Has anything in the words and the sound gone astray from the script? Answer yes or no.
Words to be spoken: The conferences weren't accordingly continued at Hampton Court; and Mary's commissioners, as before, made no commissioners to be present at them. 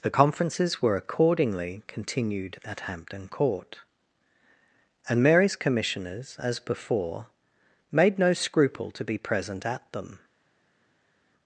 yes